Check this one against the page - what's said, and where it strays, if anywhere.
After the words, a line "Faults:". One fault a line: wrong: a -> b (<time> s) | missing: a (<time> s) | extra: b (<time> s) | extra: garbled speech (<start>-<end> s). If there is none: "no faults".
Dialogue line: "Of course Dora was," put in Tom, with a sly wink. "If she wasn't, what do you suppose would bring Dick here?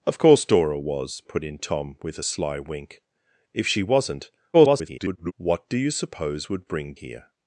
"Of course Dora was," put in Tom, with a sly wink. "If she wasn't, [garbled] what do you suppose would bring Here?
Faults:
extra: garbled speech (4.5-5.3 s)
missing: Dick (6.9 s)